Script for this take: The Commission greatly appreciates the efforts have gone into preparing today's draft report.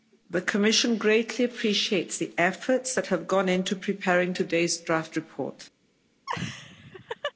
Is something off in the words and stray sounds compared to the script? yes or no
yes